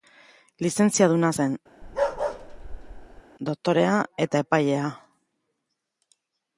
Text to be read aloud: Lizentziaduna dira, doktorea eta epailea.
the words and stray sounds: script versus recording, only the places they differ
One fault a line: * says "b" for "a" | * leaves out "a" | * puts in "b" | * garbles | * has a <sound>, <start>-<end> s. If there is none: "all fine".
* says "zen" for "dira"
* has a bark, 1.8-3.2 s